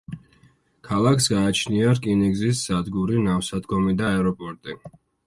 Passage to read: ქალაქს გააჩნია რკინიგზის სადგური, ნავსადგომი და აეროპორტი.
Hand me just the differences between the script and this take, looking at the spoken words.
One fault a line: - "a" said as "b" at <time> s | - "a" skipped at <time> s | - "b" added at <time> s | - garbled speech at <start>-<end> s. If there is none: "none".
none